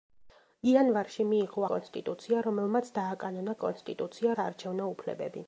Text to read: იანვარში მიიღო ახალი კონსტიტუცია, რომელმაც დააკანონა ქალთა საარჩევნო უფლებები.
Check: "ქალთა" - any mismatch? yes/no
yes